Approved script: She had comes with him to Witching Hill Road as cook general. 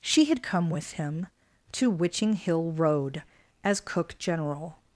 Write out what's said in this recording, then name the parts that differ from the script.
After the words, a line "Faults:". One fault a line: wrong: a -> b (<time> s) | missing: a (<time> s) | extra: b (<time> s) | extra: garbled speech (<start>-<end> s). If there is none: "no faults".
She had come with him to Witching Hill Road as cook general.
Faults:
wrong: comes -> come (0.4 s)